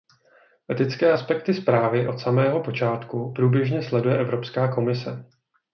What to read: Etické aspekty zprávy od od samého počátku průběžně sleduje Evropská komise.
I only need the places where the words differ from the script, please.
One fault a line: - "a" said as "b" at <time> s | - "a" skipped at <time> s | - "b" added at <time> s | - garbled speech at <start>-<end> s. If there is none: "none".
- "od" skipped at 2.2 s